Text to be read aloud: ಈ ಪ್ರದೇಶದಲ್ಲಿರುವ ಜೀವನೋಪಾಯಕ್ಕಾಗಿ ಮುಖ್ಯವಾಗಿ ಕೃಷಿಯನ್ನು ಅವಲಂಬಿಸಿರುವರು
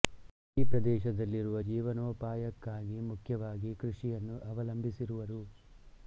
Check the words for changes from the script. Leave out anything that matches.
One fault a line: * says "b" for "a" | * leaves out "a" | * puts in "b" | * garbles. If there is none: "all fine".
all fine